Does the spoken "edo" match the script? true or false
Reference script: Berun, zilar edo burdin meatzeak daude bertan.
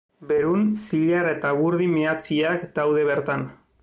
false